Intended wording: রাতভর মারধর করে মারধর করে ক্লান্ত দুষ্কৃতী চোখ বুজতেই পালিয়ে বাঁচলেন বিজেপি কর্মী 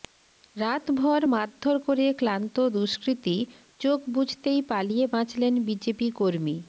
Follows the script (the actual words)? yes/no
no